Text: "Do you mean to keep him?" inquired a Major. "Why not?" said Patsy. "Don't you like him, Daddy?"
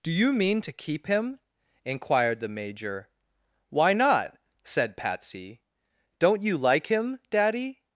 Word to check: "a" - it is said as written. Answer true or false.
false